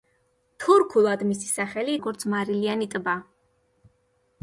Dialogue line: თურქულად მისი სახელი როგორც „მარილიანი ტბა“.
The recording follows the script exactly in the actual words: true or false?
true